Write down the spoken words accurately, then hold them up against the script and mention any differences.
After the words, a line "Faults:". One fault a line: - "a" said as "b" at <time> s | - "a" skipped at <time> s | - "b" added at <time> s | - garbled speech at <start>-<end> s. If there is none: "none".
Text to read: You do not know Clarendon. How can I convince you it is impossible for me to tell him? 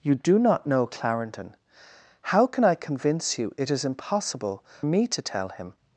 You do not know Clarendon. How can I convince you it is impossible me to tell him?
Faults:
- "for" skipped at 4.6 s